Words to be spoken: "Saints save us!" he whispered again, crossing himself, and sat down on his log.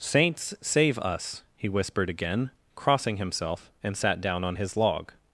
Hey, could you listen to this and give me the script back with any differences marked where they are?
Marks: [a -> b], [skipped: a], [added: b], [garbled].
"Saints save us!" he whispered again, crossing himself, and sat down on his log.